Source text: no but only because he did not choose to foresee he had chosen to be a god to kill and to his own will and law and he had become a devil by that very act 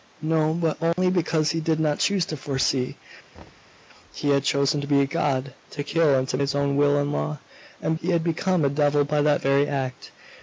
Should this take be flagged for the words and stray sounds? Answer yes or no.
yes